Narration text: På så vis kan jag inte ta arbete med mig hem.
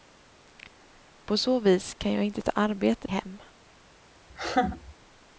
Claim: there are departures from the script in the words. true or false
true